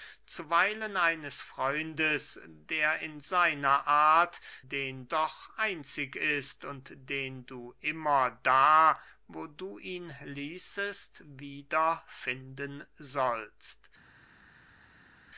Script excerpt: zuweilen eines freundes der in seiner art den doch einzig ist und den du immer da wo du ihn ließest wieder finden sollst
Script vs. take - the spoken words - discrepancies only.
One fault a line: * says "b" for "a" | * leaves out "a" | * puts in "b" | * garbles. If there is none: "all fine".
all fine